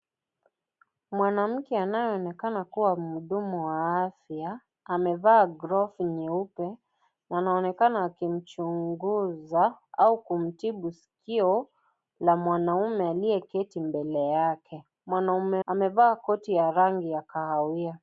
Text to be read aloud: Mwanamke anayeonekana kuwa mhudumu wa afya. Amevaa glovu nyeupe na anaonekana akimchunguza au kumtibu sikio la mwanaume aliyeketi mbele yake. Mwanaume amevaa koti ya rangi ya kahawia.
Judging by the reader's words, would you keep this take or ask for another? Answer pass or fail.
pass